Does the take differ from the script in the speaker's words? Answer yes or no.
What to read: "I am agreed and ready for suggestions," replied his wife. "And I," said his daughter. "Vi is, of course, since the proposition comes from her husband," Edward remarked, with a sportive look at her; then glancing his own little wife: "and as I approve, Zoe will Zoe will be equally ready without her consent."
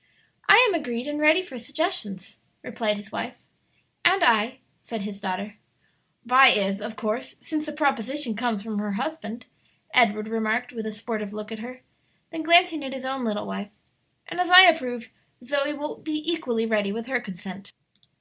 yes